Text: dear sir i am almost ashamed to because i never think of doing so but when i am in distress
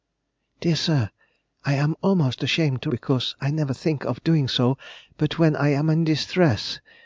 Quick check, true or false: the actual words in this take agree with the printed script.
true